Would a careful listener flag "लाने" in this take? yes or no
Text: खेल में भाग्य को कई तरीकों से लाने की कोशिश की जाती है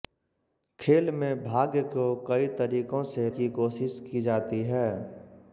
yes